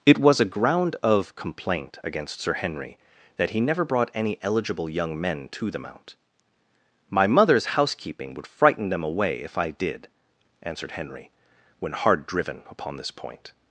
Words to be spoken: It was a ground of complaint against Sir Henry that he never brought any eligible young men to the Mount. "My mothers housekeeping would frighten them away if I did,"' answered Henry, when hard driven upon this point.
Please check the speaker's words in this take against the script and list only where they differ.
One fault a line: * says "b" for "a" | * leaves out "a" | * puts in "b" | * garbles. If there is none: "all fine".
all fine